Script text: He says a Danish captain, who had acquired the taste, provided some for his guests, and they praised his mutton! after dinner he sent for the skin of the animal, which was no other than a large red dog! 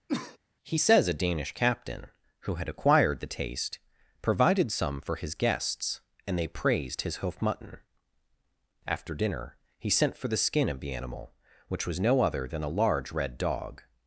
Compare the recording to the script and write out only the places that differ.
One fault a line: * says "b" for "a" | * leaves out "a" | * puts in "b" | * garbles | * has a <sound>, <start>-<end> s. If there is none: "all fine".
* has a cough, 0.1-0.4 s
* puts in "hoof"